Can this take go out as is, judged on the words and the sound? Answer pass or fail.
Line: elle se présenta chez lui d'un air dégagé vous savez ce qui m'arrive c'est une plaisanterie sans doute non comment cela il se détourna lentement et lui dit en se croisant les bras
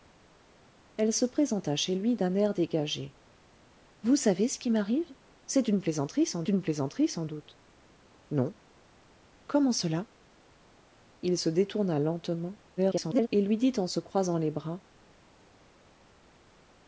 fail